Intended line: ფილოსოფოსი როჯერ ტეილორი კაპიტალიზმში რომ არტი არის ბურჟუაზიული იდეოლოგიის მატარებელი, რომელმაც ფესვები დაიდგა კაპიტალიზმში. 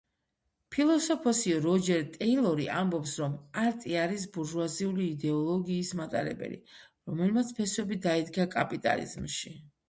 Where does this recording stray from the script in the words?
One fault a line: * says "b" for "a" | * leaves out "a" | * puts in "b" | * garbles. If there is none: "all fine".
* says "ამბობს" for "კაპიტალიზმში"